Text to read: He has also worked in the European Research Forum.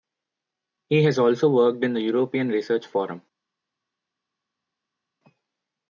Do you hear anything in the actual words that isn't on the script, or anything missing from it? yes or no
no